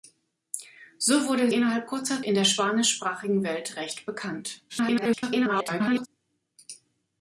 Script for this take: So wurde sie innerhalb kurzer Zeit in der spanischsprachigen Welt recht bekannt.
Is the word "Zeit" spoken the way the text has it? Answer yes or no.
no